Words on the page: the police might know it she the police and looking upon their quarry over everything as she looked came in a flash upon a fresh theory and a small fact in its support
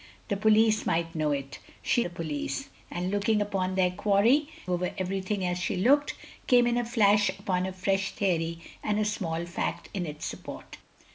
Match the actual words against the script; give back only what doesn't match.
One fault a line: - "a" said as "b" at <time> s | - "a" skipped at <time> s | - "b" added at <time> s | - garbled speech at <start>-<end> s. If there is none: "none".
none